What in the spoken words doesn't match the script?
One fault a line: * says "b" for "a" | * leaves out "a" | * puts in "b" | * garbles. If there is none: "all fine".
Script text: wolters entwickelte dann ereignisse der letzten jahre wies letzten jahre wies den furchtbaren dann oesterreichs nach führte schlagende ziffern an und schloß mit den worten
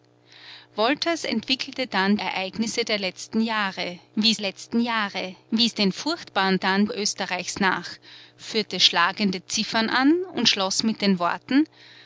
all fine